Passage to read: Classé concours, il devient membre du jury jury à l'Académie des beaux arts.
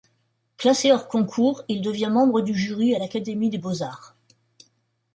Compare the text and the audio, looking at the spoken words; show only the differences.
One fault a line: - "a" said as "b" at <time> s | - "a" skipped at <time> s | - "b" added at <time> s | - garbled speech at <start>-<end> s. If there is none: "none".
- "hors" added at 0.9 s
- "jury" skipped at 3.0 s